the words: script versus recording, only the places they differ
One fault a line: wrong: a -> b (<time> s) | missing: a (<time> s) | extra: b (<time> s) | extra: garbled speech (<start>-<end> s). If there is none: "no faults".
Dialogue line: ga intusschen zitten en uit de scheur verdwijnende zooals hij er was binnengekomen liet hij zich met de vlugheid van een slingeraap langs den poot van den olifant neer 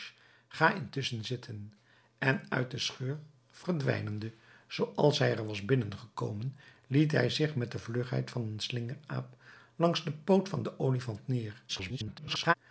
extra: garbled speech (11.7-12.5 s)